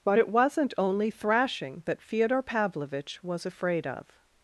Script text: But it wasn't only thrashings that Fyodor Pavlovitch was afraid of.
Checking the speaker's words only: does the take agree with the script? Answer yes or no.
no